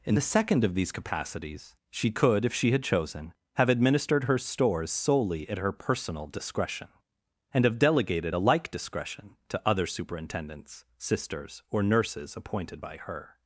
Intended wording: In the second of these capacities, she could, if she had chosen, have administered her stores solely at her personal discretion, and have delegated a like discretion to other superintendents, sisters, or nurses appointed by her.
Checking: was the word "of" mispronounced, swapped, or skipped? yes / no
no